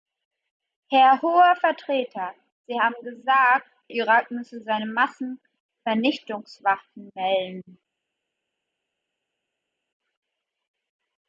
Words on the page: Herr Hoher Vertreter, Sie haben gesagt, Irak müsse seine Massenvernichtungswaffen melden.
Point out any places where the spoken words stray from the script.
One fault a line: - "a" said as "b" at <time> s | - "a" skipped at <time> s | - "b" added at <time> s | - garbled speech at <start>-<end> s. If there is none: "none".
none